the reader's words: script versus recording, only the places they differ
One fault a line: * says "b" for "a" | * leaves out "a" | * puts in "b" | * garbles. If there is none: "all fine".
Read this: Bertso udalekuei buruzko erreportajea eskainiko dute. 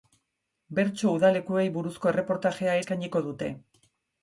all fine